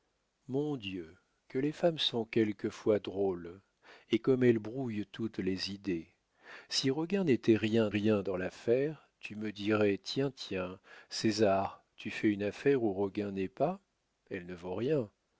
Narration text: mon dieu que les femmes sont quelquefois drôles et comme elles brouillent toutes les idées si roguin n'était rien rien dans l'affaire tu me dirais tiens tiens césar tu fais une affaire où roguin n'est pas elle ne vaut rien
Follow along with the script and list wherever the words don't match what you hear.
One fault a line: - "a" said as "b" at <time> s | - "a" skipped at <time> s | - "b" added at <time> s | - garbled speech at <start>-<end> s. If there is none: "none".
none